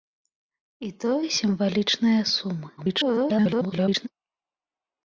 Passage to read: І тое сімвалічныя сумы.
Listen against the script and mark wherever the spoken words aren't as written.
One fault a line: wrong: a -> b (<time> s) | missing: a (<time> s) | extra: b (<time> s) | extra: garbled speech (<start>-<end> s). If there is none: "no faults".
extra: garbled speech (2.8-4.1 s)